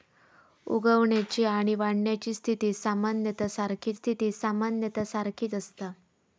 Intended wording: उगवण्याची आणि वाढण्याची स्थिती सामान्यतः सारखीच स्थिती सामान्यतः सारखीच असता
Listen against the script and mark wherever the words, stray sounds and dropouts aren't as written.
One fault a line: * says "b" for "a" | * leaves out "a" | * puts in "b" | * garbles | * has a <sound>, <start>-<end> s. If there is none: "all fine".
all fine